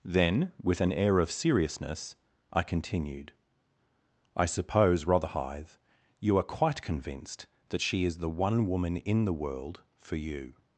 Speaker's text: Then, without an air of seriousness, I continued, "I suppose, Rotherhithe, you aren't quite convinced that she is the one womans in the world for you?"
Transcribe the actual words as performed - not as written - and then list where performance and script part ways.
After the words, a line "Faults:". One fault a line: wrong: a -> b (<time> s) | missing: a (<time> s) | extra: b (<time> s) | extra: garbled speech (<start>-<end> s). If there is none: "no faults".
Then, with an air of seriousness, I continued, "I suppose, Rotherhithe, you are quite convinced that she is the one woman in the world for you?"
Faults:
wrong: without -> with (0.6 s)
wrong: aren't -> are (6.4 s)
wrong: womans -> woman (8.7 s)